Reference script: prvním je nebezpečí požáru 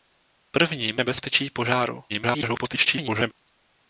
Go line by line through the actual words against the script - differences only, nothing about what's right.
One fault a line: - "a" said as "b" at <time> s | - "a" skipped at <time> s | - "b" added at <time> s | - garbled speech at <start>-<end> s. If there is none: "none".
- "je" skipped at 1.0 s
- garbled speech at 2.1-3.3 s